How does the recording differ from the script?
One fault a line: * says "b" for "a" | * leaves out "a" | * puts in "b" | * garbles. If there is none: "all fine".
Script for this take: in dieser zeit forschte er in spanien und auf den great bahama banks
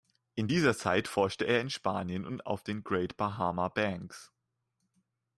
all fine